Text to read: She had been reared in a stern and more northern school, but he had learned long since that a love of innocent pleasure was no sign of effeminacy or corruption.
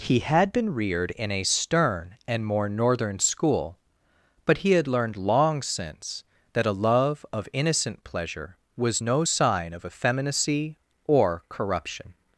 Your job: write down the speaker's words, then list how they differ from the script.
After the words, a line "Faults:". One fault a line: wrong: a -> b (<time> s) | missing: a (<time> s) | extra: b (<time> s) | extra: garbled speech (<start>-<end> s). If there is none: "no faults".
He had been reared in a stern and more northern school, but he had learned long since that a love of innocent pleasure was no sign of effeminacy or corruption.
Faults:
wrong: She -> He (0.0 s)